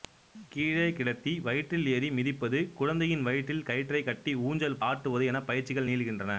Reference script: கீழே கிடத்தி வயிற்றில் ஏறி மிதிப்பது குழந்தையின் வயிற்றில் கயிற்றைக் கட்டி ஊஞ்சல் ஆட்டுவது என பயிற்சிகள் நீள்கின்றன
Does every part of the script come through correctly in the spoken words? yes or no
yes